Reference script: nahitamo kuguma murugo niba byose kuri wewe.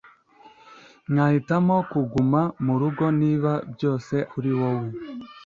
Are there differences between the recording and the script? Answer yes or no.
no